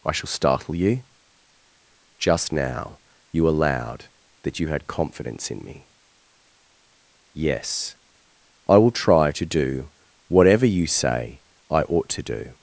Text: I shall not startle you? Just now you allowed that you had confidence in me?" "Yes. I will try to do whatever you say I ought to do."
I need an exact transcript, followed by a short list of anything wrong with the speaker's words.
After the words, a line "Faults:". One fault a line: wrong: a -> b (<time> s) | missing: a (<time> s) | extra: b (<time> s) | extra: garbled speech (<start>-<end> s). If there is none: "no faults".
I shall startle you? Just now you allowed that you had confidence in me?" "Yes. I will try to do whatever you say I ought to do."
Faults:
missing: not (0.3 s)